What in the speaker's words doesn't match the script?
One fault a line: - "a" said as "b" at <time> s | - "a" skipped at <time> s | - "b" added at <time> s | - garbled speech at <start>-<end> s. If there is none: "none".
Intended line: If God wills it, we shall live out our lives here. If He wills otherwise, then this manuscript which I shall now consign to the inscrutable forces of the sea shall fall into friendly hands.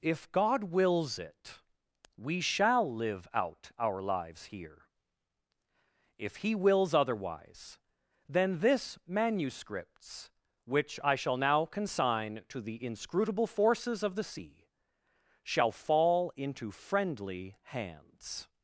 - "manuscript" said as "manuscripts" at 9.1 s